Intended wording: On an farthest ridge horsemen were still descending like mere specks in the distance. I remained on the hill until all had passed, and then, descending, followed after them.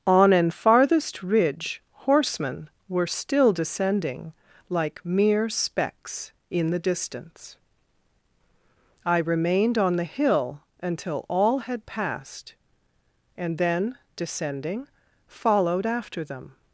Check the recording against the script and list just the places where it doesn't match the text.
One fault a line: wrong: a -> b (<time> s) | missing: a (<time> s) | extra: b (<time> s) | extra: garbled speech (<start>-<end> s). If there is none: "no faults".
no faults